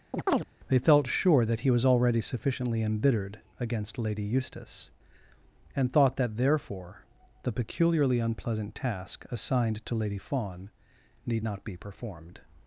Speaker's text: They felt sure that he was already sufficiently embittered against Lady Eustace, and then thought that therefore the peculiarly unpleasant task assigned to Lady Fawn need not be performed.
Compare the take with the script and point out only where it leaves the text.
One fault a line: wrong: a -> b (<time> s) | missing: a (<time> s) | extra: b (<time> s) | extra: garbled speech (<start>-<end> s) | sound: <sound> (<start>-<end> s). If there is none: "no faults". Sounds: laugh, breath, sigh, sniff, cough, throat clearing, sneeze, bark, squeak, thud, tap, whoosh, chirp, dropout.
sound: chirp (0.1-0.5 s)
missing: then (5.9 s)